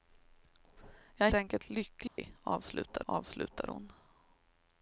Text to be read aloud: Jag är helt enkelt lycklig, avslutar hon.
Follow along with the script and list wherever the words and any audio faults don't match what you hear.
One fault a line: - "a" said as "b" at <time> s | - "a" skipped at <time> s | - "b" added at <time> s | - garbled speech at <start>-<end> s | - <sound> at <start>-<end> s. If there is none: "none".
- "helt" skipped at 1.3 s
- dropout at 2.1-2.2 s
- "avslutar" added at 3.0 s